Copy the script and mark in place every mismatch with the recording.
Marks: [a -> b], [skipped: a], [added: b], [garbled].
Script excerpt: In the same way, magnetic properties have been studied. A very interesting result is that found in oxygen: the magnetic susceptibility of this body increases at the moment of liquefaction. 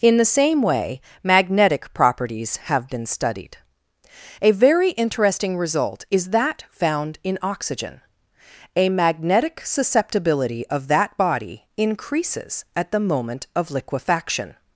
In the same way, magnetic properties have been studied. A very interesting result is that found in oxygen: [the -> a] magnetic susceptibility of [this -> that] body increases at the moment of liquefaction.